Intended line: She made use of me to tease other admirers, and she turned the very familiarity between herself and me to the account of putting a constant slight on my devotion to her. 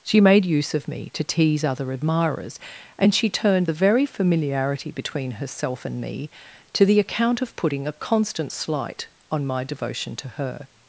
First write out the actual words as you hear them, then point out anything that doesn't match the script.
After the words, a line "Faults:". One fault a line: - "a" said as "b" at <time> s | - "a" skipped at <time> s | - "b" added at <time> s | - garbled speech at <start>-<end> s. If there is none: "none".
She made use of me to tease other admirers, and she turned the very familiarity between herself and me to the account of putting a constant slight on my devotion to her.
Faults:
none